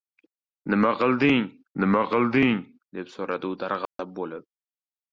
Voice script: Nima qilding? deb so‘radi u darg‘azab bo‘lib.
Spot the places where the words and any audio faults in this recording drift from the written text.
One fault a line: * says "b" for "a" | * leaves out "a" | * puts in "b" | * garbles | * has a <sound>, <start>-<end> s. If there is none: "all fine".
* puts in "nima qilding"
* has a dropout, 3.9-4.0 s